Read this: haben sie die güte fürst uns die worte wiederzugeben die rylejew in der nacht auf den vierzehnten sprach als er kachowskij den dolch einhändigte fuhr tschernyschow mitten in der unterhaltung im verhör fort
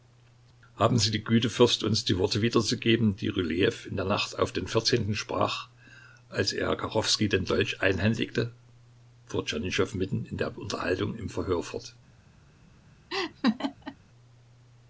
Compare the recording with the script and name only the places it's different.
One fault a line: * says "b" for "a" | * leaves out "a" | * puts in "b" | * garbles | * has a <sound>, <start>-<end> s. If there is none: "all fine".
* has a laugh, 13.1-14.0 s